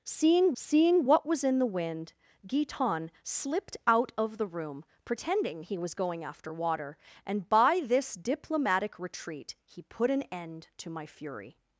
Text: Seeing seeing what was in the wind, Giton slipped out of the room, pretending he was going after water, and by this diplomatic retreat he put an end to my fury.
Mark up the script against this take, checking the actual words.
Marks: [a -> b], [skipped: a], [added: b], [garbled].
Seeing seeing what was in the wind, Giton slipped out of the room, pretending he was going after water, and by this diplomatic retreat he put an end to my fury.